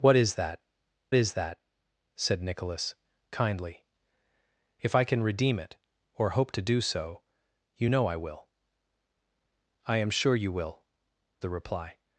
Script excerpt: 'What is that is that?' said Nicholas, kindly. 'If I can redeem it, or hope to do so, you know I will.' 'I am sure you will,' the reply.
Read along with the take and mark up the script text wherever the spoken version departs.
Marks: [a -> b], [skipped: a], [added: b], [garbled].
'What is that is that?' said Nicholas, kindly. 'If I can redeem it, or hope to do so, you know I will.' 'I am sure you will,' the reply.